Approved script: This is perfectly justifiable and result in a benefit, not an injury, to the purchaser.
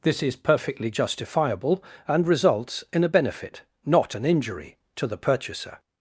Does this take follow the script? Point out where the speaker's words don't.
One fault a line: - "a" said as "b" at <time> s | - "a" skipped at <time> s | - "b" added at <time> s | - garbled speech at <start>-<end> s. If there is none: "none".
- "result" said as "results" at 2.3 s